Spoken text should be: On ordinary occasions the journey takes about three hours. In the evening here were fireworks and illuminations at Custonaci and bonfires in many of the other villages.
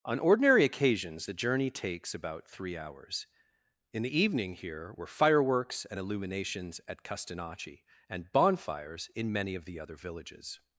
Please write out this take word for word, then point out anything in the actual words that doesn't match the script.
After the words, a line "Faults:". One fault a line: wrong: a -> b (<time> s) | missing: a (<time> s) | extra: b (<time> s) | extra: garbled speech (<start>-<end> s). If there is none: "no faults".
On ordinary occasions the journey takes about three hours. In the evening here were fireworks and illuminations at Custonaci and bonfires in many of the other villages.
Faults:
no faults